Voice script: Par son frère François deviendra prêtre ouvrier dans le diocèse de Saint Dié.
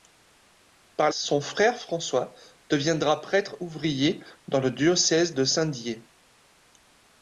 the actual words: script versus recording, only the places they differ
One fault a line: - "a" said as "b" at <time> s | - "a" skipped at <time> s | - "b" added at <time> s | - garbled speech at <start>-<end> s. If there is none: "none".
none